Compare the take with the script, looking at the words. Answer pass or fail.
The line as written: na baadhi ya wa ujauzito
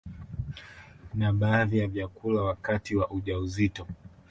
fail